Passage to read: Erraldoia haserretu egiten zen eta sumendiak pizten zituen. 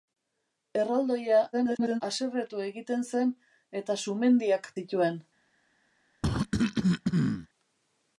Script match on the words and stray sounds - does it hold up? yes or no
no